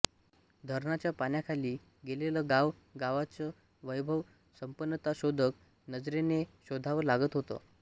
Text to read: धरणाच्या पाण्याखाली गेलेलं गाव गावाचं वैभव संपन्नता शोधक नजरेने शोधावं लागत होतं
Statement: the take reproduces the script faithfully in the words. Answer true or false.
true